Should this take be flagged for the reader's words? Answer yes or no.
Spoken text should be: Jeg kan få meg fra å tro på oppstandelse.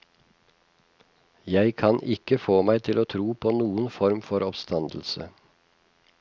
yes